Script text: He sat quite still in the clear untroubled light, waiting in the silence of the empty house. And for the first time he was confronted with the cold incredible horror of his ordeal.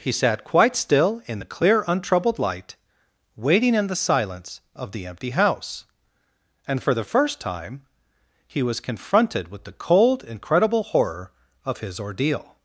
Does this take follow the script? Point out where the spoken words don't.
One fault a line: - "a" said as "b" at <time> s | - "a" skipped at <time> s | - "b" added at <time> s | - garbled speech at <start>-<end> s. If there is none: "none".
none